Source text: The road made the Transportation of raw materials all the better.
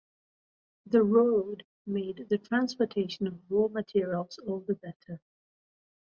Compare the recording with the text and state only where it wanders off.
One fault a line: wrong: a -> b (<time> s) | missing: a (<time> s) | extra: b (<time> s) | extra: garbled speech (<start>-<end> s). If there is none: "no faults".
no faults